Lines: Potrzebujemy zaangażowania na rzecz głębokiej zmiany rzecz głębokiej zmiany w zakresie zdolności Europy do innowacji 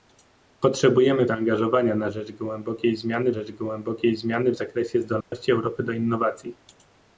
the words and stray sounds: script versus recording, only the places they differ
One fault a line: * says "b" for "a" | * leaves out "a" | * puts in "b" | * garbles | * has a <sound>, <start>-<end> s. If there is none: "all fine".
* has a dropout, 5.2-5.3 s